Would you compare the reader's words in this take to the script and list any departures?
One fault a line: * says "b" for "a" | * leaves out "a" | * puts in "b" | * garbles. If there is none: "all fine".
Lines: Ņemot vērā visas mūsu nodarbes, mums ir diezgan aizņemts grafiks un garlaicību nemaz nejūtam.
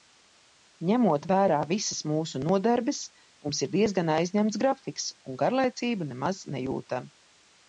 all fine